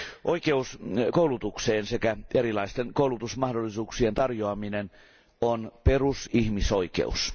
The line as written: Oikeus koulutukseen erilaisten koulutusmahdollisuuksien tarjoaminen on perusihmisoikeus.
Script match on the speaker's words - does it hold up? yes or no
no